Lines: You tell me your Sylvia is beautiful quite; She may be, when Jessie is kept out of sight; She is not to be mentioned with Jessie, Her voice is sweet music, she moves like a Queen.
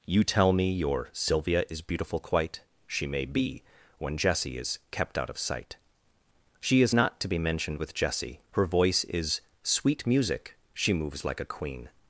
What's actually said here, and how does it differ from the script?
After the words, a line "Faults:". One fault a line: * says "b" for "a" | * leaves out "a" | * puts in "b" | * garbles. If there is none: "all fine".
You tell me your Sylvia is beautiful quite; She may be, when Jessie is kept out of sight; She is not to be mentioned with Jessie, Her voice is sweet music, she moves like a Queen.
Faults:
all fine